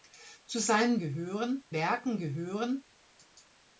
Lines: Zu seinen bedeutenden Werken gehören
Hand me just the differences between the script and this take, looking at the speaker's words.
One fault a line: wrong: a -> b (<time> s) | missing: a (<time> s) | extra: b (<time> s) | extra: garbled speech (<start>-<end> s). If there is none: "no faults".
wrong: bedeutenden -> gehören (1.0 s)